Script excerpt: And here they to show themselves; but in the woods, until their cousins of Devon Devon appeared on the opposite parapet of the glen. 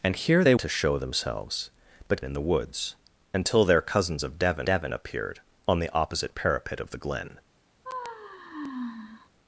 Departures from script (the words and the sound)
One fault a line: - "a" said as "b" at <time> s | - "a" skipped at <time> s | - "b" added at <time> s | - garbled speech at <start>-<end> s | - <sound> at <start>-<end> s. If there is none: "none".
- sigh at 7.8-9.3 s